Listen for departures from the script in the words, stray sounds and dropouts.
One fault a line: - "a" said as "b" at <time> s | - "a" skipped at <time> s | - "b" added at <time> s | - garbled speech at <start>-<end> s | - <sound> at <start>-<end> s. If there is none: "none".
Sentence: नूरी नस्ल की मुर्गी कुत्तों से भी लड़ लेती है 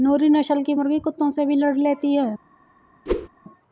- whoosh at 3.1-3.3 s